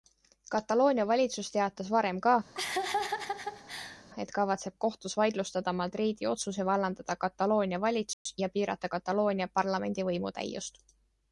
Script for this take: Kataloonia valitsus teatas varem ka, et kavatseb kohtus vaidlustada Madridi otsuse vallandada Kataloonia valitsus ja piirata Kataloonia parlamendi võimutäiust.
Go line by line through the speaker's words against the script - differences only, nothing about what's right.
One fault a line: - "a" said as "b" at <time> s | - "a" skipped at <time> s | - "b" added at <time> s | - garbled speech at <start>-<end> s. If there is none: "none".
none